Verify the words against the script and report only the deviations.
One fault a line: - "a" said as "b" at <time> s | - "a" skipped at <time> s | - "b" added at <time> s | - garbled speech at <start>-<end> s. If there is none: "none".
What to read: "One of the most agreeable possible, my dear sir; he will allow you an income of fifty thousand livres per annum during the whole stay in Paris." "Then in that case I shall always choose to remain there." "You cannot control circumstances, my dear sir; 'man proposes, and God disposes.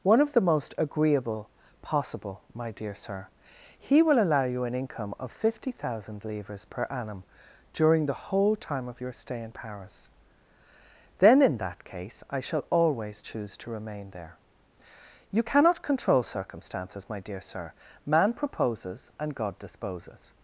- "time of your" added at 8.6 s